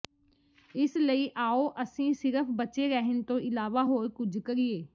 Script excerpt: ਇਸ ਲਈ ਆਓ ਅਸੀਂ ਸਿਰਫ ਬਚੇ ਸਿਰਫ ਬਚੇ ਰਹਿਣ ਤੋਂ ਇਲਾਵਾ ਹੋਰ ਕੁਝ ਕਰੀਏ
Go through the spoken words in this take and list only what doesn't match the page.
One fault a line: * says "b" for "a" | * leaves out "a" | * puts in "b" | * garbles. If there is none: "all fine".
* leaves out "ਸਿਰਫ ਬਚੇ"